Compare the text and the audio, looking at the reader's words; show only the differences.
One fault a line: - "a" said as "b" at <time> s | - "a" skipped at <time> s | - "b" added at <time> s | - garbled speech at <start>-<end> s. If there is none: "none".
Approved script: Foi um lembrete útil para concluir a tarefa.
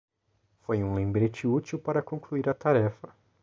none